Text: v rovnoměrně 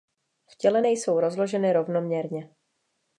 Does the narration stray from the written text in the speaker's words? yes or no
yes